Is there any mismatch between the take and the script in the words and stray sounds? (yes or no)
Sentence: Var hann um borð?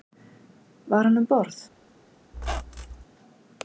yes